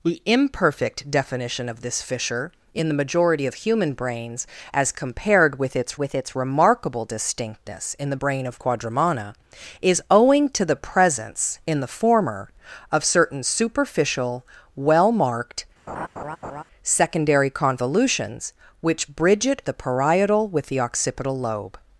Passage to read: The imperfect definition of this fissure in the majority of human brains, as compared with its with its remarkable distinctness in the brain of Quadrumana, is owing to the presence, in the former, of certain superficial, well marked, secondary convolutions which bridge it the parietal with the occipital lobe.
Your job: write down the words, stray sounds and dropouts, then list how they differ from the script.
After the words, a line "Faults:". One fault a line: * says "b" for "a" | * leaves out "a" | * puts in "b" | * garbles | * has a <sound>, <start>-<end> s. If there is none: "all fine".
The imperfect definition of this fissure in the majority of human brains, as compared with its with its remarkable distinctness in the brain of Quadrumana, is owing to the presence, in the former, of certain superficial, well marked, secondary convolutions which bridge it the parietal with the occipital lobe.
Faults:
* has a laugh, 15.9-16.6 s